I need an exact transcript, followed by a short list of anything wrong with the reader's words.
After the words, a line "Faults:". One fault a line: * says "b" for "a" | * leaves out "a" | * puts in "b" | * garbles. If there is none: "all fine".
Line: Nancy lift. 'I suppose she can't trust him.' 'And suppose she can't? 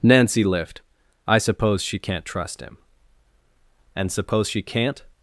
Nancy lift. 'I suppose she can't trust him.' 'And suppose she can't?
Faults:
all fine